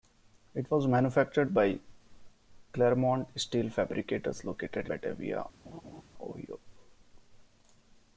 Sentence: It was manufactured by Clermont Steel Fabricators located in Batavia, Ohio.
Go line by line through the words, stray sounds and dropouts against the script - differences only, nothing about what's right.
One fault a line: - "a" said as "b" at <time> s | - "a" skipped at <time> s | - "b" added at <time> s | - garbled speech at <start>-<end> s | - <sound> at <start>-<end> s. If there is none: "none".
- "in" skipped at 4.8 s
- laugh at 5.6-6.0 s